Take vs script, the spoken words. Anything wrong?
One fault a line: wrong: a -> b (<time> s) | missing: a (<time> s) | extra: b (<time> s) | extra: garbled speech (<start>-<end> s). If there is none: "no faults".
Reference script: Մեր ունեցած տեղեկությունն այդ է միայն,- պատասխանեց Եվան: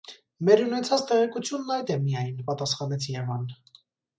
no faults